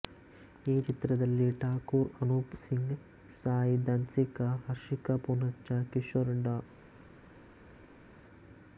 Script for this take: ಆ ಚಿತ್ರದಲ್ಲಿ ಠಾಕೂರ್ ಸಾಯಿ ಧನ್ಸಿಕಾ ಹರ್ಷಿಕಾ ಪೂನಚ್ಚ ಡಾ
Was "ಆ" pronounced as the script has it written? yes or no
no